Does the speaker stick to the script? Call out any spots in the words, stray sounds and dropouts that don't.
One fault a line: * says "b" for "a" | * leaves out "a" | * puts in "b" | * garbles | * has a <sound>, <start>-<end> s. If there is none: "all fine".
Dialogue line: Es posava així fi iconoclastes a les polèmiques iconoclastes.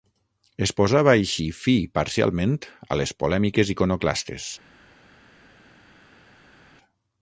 * says "parcialment" for "iconoclastes"